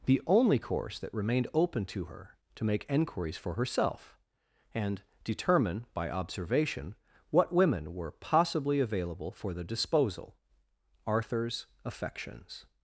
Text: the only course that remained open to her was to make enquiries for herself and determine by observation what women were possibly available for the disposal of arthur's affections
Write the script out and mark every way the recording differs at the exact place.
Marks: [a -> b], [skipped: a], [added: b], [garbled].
the only course that remained open to her [skipped: was] to make enquiries for herself and determine by observation what women were possibly available for the disposal [skipped: of] arthur's affections